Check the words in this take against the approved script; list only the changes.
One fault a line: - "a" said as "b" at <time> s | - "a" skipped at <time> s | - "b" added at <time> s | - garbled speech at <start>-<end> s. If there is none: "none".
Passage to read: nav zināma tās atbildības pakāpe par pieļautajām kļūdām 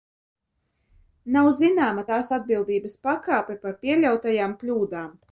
none